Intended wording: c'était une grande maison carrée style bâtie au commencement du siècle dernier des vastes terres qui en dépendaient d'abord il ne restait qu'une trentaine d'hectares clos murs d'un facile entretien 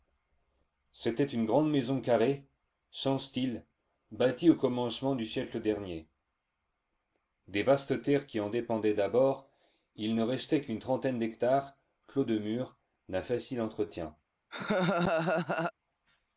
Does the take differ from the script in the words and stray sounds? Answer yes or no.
yes